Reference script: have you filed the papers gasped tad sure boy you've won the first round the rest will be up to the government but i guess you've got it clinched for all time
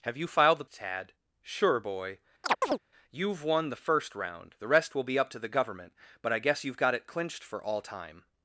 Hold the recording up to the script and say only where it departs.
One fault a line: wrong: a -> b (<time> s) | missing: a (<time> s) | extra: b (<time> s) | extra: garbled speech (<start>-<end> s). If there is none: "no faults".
missing: papers gasped (0.7 s)